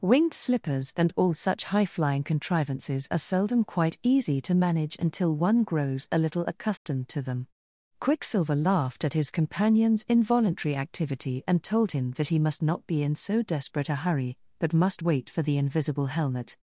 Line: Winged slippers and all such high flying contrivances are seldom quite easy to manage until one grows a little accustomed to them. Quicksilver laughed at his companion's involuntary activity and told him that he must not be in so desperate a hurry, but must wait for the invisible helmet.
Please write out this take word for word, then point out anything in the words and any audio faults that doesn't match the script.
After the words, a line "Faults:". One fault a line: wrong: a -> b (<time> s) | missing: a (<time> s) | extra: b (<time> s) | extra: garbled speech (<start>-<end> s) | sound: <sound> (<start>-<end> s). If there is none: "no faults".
Winged slippers and all such high flying contrivances are seldom quite easy to manage until one grows a little accustomed to them. Quicksilver laughed at his companion's involuntary activity and told him that he must not be in so desperate a hurry, but must wait for the invisible helmet.
Faults:
sound: dropout (6.8-6.9 s)